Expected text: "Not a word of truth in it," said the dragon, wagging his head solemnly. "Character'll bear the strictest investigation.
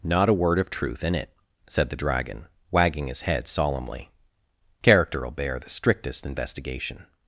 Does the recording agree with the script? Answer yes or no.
yes